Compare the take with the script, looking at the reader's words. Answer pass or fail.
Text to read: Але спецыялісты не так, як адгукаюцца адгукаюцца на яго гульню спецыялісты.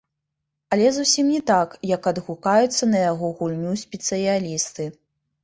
fail